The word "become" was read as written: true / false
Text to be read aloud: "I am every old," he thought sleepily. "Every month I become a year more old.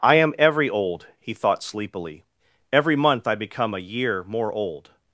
true